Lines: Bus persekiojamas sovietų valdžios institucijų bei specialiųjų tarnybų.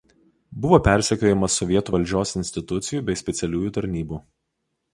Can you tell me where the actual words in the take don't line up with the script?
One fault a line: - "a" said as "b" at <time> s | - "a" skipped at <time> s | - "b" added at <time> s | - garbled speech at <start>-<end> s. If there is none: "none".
- "Bus" said as "Buvo" at 0.6 s